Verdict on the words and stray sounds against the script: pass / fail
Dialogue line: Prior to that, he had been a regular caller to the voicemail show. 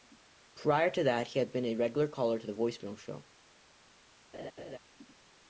fail